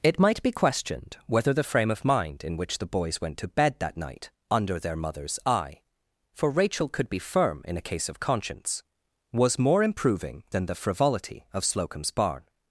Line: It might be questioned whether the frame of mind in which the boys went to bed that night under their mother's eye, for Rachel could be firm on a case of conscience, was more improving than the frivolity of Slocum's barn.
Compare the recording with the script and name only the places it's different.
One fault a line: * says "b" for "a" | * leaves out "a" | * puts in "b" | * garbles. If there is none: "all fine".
* says "in" for "on"